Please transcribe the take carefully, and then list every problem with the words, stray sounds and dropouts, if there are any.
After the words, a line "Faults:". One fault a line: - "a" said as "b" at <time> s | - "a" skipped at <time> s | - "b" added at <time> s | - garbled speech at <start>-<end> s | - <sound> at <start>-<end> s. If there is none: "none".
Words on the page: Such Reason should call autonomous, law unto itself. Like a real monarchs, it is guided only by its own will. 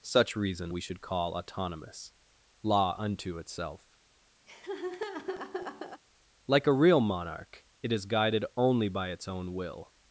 Such Reason we should call autonomous, law unto itself. Like a real monarch, it is guided only by its own will.
Faults:
- "we" added at 0.7 s
- laugh at 4.5-6.0 s
- "monarchs" said as "monarch" at 7.0 s